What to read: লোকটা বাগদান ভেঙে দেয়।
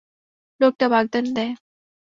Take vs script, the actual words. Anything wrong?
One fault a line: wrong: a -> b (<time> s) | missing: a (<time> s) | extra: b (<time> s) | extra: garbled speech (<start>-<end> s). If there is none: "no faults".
missing: ভেঙে (1.2 s)